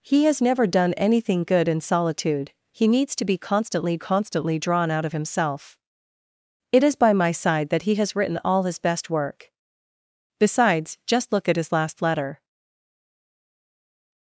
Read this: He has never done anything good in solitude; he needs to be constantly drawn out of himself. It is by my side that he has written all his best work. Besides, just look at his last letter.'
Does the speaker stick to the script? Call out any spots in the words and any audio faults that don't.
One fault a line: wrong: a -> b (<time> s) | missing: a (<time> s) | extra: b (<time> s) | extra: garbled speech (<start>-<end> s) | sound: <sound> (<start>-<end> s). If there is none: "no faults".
extra: constantly (4.0 s)